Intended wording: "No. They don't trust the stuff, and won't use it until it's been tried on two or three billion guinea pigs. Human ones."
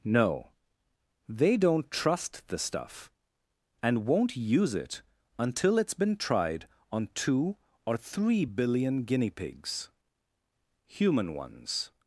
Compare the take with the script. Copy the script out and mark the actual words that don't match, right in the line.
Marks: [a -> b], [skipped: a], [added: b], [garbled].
"No. They don't trust the stuff, and won't use it until it's been tried on two or three billion guinea pigs. Human ones."